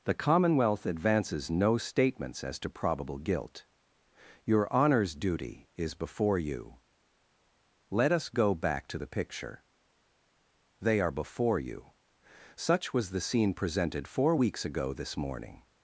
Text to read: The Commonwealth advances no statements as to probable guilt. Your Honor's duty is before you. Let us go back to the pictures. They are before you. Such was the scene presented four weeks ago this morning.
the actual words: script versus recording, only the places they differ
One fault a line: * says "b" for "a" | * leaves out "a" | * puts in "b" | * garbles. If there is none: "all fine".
* says "picture" for "pictures"